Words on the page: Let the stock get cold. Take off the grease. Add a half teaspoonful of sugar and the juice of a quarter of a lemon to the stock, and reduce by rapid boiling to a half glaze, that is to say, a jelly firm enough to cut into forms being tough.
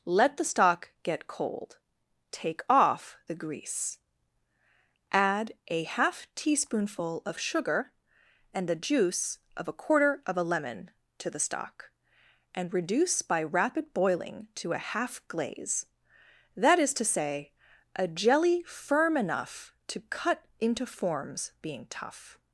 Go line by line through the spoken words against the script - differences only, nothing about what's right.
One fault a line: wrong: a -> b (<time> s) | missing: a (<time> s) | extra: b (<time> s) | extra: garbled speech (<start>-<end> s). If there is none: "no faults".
no faults